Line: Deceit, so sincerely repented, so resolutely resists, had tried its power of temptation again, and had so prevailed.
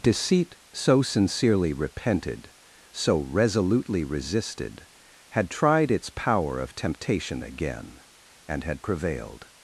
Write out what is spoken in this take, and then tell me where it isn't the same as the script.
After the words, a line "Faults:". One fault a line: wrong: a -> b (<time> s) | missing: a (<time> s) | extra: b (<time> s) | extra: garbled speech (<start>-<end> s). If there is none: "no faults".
Deceit, so sincerely repented, so resolutely resisted, had tried its power of temptation again, and had prevailed.
Faults:
wrong: resists -> resisted (4.0 s)
missing: so (8.8 s)